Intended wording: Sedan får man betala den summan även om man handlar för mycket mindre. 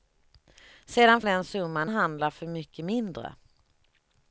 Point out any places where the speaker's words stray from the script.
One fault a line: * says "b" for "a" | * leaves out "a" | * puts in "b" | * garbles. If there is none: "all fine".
* leaves out "får man betala"
* leaves out "även om man"